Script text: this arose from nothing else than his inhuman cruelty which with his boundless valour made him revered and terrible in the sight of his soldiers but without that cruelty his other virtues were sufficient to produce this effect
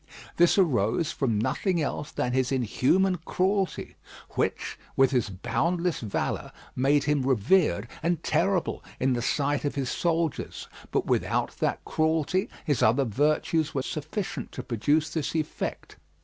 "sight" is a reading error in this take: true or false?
false